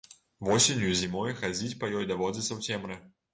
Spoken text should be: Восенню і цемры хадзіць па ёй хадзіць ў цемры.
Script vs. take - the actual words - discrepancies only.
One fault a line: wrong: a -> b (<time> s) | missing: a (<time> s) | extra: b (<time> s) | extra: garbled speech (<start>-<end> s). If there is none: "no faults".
wrong: цемры -> зімой (1.0 s)
wrong: хадзіць -> даводзіцца (2.1 s)